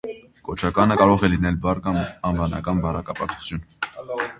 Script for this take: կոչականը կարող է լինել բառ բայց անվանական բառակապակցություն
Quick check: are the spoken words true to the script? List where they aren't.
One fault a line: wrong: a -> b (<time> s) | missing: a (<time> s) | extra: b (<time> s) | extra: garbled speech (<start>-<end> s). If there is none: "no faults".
wrong: բայց -> կամ (1.9 s)